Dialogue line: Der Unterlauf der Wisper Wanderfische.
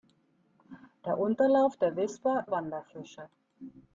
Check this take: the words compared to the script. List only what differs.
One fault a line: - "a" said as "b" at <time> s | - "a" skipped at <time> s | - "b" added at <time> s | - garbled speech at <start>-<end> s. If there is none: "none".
none